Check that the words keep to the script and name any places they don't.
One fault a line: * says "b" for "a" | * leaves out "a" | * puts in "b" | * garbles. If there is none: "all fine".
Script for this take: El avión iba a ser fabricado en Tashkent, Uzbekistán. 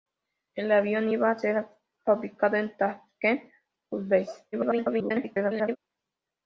* garbles